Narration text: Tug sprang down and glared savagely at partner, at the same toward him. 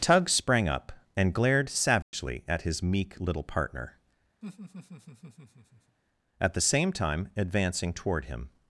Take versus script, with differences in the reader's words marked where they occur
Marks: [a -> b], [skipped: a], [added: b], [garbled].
Tug sprang [down -> up] and glared savagely at [added: his meek little] partner, at the same [added: time advancing] toward him.